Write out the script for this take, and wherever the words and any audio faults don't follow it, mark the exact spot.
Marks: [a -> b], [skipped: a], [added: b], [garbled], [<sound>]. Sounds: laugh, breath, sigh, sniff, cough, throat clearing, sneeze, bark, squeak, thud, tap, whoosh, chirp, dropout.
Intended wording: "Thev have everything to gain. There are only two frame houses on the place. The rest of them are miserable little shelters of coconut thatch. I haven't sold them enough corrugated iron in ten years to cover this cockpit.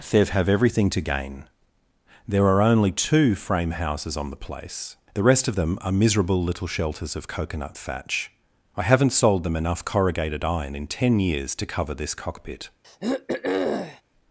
"Thev have everything to gain. There are only two frame houses on the place. The rest of them are miserable little shelters of coconut thatch. I haven't sold them enough corrugated iron in ten years to cover this cockpit. [throat clearing]